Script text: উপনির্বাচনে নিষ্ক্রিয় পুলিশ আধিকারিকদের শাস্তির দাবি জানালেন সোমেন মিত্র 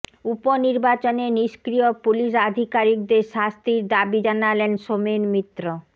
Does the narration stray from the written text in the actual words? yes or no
no